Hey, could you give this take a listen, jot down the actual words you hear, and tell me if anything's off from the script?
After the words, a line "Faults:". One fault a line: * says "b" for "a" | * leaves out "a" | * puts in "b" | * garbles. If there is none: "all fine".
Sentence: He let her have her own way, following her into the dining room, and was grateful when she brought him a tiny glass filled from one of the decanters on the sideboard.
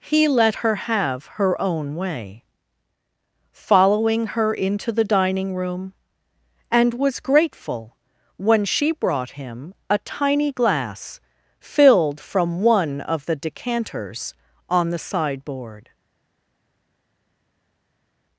He let her have her own way, following her into the dining room, and was grateful when she brought him a tiny glass filled from one of the decanters on the sideboard.
Faults:
all fine